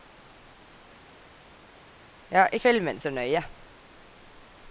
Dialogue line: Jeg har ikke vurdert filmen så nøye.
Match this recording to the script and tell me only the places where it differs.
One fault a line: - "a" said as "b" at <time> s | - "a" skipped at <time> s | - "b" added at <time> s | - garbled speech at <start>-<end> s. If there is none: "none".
- "ikke vurdert" skipped at 2.5 s